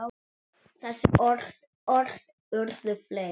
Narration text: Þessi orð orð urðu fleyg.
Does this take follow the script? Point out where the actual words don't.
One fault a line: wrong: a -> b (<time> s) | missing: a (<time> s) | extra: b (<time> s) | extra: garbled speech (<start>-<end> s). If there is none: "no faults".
no faults